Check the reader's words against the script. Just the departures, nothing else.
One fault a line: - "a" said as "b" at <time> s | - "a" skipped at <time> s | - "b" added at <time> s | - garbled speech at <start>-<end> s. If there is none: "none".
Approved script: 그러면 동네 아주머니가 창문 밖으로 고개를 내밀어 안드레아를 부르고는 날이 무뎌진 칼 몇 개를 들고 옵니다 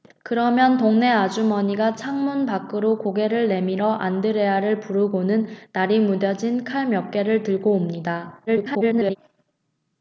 - garbled speech at 8.5-9.2 s